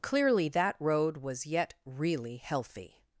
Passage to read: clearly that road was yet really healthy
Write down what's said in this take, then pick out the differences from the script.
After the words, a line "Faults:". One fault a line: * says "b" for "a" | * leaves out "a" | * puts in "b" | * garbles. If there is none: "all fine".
clearly that road was yet really healthy
Faults:
all fine